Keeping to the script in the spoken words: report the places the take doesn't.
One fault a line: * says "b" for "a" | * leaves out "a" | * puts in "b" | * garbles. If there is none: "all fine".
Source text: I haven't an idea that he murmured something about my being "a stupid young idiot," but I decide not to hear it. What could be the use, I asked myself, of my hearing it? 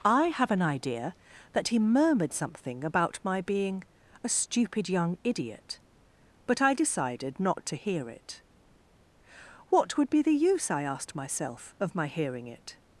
* says "have" for "haven't"
* says "decided" for "decide"
* says "would" for "could"